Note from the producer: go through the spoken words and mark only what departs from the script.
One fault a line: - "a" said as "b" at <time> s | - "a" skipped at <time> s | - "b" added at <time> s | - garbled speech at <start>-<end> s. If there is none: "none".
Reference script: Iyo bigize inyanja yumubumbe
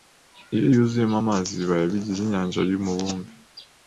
- "yuzuyemo amazi ibibaya" added at 0.7 s